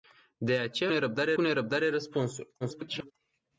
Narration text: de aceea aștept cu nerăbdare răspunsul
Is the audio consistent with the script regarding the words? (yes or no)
no